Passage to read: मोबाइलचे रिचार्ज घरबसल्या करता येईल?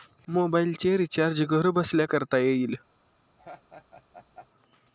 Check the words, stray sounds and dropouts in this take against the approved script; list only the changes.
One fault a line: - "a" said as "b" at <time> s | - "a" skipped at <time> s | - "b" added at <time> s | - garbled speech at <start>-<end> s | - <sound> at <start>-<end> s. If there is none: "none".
- laugh at 3.4-4.5 s